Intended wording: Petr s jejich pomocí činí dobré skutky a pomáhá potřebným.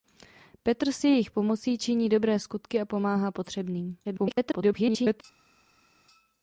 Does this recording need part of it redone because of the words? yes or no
yes